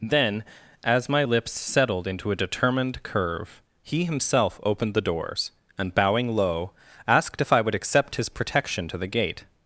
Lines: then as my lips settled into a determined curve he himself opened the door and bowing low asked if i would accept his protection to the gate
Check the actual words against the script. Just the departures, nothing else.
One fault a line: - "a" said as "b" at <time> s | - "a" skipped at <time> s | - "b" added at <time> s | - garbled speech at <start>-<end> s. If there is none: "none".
- "door" said as "doors" at 5.0 s